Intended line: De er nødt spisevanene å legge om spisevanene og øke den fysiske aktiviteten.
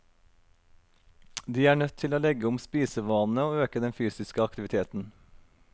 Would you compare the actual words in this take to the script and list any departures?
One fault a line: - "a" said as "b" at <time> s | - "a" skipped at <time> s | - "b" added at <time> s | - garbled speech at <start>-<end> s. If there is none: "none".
- "spisevanene" said as "til" at 2.0 s